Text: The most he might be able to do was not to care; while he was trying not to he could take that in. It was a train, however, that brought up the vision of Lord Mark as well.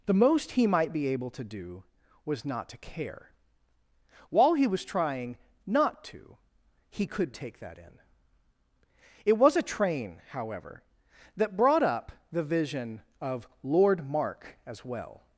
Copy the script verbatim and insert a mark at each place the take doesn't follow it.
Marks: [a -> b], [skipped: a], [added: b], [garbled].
The most he might be able to do was not to care; while he was trying not to he could take that in. It was a train, however, that brought up the vision of Lord Mark as well.